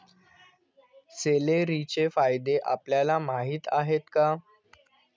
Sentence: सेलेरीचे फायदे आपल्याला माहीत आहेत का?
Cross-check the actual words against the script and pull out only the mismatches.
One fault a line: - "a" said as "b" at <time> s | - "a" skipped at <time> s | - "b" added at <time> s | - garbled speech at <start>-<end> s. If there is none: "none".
none